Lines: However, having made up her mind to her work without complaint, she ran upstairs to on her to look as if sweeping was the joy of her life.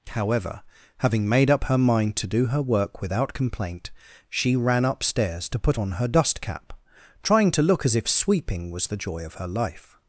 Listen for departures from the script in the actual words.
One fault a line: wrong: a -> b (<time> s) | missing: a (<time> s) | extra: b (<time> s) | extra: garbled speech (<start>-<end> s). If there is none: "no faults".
extra: do (2.3 s)
extra: put (5.6 s)
extra: dust cap trying (6.1 s)